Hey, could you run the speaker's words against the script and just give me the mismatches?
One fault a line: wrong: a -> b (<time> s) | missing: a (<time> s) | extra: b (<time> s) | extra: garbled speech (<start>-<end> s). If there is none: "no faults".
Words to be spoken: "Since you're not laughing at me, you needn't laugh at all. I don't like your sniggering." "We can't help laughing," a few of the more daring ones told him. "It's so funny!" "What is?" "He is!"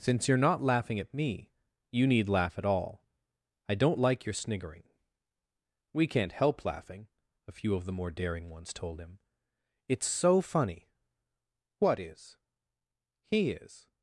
wrong: needn't -> need (2.1 s)